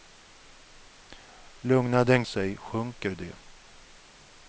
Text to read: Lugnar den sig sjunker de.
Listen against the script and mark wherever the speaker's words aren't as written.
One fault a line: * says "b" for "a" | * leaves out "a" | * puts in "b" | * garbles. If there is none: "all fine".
all fine